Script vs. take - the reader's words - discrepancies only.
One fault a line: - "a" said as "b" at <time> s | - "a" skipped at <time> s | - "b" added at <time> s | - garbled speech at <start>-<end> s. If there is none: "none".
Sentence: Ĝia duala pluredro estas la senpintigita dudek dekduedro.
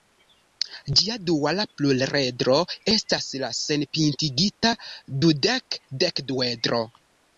none